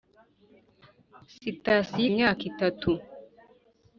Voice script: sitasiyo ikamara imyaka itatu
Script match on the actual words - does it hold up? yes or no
no